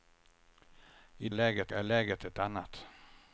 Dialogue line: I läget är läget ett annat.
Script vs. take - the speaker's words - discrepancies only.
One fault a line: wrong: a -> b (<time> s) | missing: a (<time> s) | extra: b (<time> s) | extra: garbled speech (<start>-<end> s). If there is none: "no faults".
no faults